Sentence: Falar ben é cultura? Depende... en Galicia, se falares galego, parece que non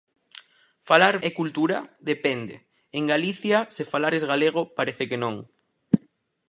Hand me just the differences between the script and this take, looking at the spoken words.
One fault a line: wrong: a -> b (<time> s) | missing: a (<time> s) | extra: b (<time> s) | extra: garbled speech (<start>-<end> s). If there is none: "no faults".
missing: ben (1.1 s)